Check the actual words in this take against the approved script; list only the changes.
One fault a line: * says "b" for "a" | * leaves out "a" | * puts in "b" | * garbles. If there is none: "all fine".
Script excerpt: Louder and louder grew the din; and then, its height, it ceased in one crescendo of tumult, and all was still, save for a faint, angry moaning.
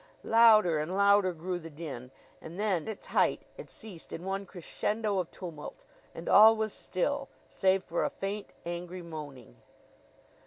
all fine